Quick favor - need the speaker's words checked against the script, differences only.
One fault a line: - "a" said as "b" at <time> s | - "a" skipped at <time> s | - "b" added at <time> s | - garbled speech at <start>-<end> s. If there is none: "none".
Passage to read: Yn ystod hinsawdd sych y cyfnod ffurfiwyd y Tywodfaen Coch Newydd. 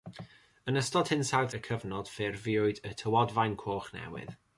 - "sych" skipped at 1.5 s